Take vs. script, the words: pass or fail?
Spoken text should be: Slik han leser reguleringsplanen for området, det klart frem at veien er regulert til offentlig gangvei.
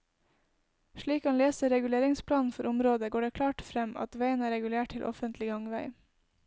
fail